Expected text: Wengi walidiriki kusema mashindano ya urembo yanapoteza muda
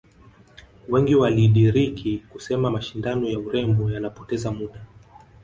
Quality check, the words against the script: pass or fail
pass